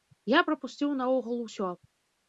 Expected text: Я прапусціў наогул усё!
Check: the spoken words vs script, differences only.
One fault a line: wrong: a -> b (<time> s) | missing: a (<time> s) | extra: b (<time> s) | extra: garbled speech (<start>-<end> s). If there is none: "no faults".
no faults